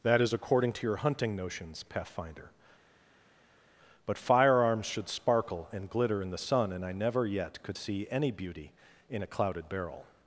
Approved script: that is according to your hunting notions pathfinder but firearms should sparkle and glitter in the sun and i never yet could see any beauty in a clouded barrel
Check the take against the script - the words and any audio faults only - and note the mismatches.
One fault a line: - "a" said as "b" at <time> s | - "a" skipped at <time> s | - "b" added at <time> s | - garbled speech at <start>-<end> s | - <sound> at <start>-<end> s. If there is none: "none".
none